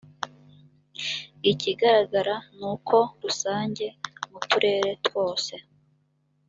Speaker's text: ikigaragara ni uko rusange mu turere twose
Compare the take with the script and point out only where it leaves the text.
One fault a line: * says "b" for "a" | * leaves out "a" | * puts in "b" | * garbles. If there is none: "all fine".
all fine